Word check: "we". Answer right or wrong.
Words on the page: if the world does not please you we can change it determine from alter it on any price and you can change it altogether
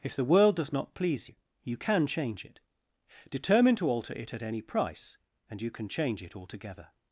wrong